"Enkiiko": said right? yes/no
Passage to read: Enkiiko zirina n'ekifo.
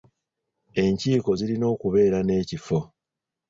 yes